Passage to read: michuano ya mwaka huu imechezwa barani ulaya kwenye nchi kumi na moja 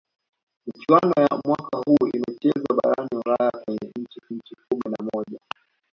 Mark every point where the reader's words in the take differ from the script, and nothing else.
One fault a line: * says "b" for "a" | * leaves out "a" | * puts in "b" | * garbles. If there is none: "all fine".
* puts in "nchi"